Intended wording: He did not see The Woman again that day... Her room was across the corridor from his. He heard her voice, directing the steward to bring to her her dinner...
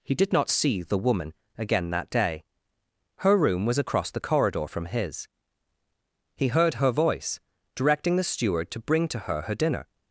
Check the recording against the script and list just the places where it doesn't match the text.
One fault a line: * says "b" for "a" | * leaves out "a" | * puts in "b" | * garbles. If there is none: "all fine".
all fine